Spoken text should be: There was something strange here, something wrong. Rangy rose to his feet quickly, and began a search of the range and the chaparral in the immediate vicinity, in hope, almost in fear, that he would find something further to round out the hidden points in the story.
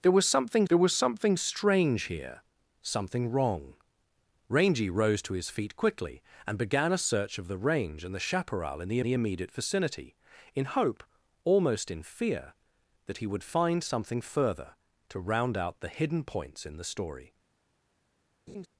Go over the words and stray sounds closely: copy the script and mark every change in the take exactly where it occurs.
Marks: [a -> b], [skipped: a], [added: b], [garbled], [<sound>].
There was something [added: there was something] strange here, something wrong. Rangy rose to his feet quickly, and began a search of the range and the chaparral in the [added: the] immediate vicinity, in hope, almost in fear, that he would find something further to round out the hidden points in the story. [laugh]